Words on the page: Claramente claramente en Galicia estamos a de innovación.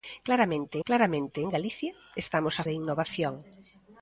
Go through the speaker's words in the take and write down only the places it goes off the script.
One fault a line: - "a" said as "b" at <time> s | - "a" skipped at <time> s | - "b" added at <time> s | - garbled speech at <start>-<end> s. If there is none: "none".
none